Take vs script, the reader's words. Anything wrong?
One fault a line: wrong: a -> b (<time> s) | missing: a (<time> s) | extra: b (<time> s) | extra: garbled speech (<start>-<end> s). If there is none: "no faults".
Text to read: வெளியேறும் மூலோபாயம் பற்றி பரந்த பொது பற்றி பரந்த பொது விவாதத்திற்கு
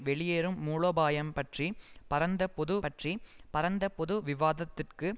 no faults